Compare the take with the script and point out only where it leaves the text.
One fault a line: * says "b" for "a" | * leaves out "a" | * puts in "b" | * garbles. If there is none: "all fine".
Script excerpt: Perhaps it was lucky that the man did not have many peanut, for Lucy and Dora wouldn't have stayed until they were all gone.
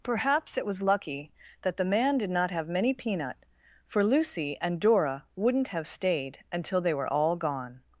all fine